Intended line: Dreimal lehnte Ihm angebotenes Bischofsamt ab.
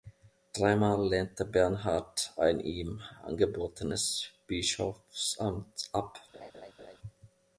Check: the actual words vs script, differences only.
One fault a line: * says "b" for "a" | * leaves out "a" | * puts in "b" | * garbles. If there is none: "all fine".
* puts in "Bernhard ein"